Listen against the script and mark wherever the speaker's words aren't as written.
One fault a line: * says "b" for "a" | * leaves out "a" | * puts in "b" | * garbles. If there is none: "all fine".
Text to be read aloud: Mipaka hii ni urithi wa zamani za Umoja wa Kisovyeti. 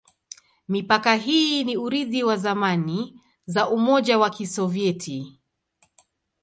all fine